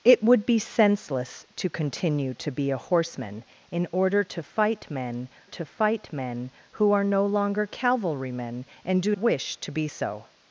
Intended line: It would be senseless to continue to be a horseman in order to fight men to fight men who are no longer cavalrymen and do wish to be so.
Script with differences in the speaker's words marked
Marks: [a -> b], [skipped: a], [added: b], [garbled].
It would be senseless to continue to be a horseman in order to fight men to fight men who are no longer cavalrymen and do wish to be so.